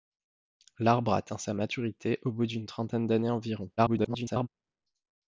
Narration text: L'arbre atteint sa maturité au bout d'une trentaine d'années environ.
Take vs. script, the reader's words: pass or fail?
fail